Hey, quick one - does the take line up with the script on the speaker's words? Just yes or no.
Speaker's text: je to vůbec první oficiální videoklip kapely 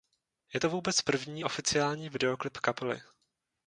yes